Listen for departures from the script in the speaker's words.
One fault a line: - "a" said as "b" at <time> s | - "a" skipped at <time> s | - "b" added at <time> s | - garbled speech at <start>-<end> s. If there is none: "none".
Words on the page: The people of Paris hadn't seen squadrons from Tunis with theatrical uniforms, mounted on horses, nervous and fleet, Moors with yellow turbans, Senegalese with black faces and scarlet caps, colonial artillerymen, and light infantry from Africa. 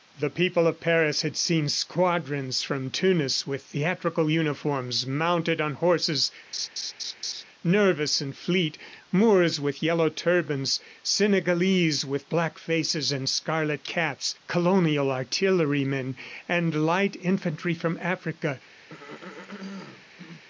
- "hadn't" said as "had" at 1.2 s